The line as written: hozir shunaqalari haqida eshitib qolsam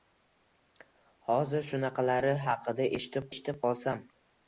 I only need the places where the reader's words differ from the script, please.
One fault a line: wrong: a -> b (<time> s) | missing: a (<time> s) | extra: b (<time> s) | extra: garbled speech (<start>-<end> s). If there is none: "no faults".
extra: eshitib (3.3 s)